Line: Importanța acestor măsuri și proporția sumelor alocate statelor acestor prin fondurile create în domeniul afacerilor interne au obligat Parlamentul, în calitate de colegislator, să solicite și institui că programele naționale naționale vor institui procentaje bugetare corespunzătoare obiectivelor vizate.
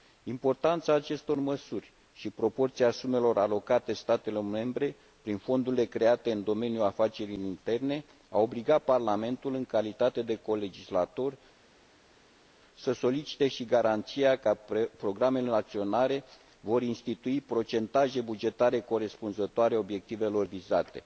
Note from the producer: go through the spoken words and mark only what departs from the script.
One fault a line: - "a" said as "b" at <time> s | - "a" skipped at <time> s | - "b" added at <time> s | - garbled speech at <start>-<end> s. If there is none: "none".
- "acestor" said as "membre" at 4.4 s
- "institui" said as "garanția" at 13.6 s
- "naționale" skipped at 16.2 s